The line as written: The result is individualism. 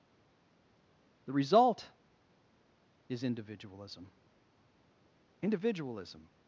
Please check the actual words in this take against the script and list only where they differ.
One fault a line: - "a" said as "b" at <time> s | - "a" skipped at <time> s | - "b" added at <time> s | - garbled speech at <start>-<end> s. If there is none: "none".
- "individualism" added at 5.4 s